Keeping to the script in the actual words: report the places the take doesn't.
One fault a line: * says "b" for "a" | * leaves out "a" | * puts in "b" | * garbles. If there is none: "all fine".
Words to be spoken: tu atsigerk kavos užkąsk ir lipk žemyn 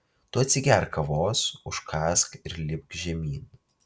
all fine